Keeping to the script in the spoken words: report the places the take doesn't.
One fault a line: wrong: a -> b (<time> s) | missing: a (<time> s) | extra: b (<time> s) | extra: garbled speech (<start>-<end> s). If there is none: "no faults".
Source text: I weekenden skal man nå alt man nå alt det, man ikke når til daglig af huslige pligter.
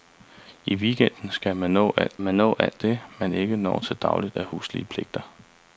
no faults